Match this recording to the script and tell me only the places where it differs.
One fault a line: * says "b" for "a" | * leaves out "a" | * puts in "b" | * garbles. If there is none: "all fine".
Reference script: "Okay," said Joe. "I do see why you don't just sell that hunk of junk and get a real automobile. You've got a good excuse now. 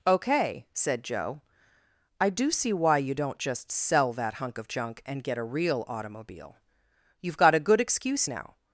all fine